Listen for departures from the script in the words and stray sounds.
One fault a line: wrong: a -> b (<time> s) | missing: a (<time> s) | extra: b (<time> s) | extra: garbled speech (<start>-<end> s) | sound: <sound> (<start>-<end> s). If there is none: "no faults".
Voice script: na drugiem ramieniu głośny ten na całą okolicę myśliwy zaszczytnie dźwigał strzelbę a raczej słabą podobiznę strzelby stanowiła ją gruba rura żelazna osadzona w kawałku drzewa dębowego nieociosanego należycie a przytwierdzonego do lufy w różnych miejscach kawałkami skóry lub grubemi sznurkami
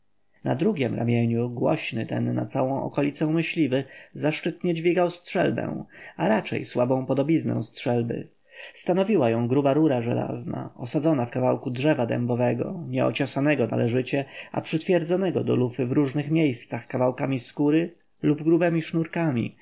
no faults